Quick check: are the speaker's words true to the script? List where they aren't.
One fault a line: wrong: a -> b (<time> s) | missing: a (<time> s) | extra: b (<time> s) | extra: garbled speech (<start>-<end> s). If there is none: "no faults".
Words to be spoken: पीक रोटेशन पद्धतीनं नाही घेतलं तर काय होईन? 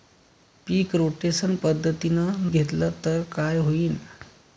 missing: नाही (2.5 s)